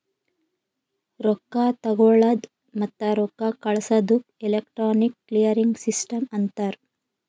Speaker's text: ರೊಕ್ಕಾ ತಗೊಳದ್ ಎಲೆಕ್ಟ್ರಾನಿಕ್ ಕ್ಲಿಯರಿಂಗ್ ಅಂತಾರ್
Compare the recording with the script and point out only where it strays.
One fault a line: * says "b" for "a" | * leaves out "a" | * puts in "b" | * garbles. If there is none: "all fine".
* puts in "ಮತ್ತ ರೊಕ್ಕಾ ಕಳ್ಸದುಕ್"
* puts in "ಸಿಸ್ಟಮ್"